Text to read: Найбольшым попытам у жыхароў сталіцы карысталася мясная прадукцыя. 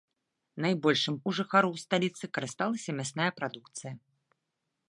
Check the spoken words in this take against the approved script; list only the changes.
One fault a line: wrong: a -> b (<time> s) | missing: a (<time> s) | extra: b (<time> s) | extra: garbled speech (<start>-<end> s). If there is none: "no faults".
missing: попытам (1.1 s)